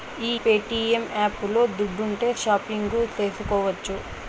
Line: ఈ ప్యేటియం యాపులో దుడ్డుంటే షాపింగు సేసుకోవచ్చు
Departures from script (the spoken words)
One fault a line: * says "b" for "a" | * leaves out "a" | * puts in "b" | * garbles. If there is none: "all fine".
all fine